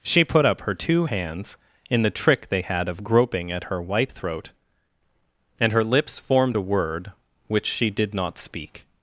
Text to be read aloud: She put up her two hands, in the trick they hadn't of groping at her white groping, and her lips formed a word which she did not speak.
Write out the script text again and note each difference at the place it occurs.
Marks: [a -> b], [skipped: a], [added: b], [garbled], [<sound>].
She put up her two hands, in the trick they [hadn't -> had] of groping at her white [groping, -> throat] and her lips formed a word which she did not speak.